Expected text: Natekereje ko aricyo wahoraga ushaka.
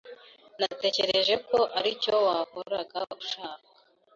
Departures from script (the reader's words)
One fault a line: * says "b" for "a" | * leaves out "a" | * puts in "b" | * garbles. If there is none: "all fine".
all fine